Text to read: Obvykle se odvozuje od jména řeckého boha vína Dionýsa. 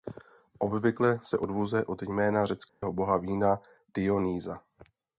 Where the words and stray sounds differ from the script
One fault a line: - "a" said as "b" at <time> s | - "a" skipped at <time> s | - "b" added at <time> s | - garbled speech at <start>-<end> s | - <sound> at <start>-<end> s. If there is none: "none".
- dropout at 2.7-2.8 s